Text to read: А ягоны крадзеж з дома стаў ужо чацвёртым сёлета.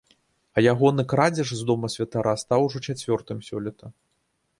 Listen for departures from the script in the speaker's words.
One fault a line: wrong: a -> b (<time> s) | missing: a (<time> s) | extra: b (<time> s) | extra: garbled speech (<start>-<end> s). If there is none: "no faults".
extra: святара (1.9 s)